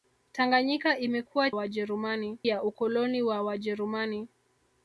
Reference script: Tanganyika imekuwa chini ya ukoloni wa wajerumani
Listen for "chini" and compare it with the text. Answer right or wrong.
wrong